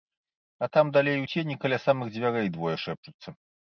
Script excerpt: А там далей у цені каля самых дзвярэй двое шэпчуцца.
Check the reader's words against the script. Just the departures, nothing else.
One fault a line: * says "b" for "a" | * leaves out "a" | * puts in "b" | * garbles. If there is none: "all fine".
all fine